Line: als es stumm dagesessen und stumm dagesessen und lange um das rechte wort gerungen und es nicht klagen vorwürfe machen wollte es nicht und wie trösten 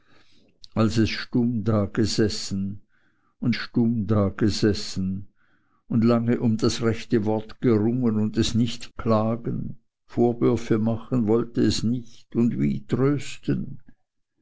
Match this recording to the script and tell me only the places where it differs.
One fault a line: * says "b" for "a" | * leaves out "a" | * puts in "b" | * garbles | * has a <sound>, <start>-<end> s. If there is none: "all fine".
all fine